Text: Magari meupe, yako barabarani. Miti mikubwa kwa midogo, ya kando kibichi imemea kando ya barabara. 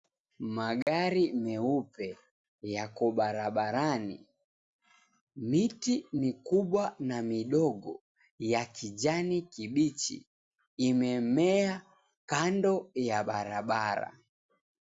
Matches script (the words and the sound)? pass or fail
fail